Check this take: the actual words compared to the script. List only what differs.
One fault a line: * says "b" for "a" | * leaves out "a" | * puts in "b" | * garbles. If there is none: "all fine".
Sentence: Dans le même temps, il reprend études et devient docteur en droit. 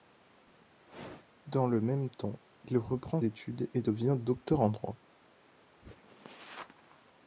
all fine